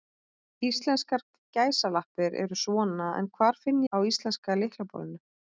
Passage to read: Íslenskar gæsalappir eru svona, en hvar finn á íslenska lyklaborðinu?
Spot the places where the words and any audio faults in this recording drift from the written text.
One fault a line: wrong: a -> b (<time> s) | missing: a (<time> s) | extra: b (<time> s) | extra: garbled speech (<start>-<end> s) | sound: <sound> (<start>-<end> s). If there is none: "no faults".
no faults